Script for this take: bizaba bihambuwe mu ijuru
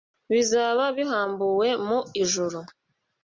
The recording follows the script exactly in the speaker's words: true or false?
true